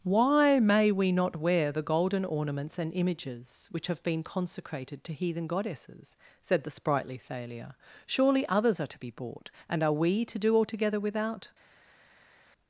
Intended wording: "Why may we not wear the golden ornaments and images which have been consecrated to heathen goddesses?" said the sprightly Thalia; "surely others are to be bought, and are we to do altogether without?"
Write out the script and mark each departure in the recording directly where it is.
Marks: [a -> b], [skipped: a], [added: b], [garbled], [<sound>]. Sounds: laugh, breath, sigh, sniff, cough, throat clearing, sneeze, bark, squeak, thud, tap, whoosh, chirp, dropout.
"Why may we not wear the golden ornaments and images which have been consecrated to heathen goddesses?" said the sprightly Thalia; "surely others are to be bought, and are we to do altogether without?"